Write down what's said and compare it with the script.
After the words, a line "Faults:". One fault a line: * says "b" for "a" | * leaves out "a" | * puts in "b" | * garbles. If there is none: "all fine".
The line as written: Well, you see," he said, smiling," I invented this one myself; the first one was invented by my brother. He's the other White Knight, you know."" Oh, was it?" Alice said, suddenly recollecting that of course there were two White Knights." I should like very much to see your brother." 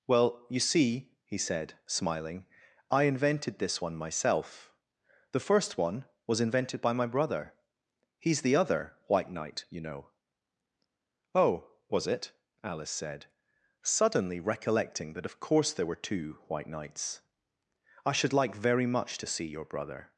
Well, you see," he said, smiling," I invented this one myself; the first one was invented by my brother. He's the other White Knight, you know."" Oh, was it?" Alice said, suddenly recollecting that of course there were two White Knights." I should like very much to see your brother."
Faults:
all fine